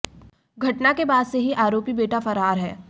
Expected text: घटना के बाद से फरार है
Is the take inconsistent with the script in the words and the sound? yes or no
yes